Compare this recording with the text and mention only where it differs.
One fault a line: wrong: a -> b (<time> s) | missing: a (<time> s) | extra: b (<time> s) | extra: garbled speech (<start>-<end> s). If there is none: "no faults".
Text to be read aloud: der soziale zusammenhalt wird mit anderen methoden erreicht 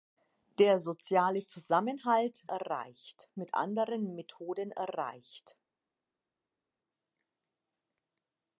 wrong: wird -> erreicht (2.4 s)